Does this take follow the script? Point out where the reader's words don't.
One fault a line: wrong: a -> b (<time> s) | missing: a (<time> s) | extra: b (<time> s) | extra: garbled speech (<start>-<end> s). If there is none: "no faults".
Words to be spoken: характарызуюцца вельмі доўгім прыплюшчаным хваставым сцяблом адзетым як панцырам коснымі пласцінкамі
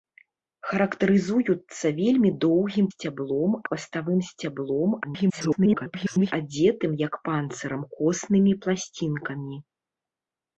wrong: прыплюшчаным -> сцяблом (2.9 s)
extra: garbled speech (5.0-6.3 s)